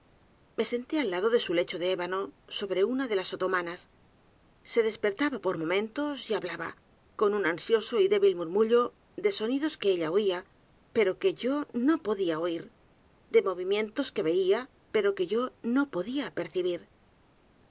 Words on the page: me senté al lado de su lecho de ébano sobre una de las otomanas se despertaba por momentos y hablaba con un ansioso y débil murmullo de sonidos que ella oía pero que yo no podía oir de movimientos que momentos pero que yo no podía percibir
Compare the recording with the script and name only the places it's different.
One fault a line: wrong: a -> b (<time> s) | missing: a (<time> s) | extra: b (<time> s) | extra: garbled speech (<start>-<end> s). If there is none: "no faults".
wrong: momentos -> veía (14.2 s)